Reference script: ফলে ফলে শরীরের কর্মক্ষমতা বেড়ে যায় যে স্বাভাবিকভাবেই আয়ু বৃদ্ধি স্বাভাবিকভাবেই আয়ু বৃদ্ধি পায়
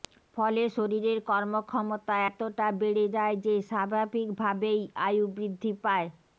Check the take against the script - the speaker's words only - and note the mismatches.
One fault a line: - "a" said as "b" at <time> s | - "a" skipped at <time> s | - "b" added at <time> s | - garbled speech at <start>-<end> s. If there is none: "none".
- "ফলে" skipped at 0.6 s
- "এতটা" added at 2.3 s
- "স্বাভাবিকভাবেই আয়ু বৃদ্ধি" skipped at 5.7 s